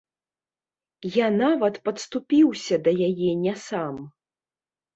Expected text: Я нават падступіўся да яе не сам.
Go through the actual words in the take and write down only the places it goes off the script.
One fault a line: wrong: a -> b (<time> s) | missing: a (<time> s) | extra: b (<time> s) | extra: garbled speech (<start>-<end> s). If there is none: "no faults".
no faults